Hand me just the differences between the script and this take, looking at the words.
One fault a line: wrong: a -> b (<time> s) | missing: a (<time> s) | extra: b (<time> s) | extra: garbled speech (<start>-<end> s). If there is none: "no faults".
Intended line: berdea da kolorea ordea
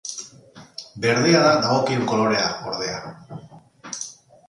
extra: dagokion (1.7 s)